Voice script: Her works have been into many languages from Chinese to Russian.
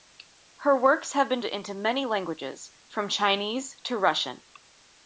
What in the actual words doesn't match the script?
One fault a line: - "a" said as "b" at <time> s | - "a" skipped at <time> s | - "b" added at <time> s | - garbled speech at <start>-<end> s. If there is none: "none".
none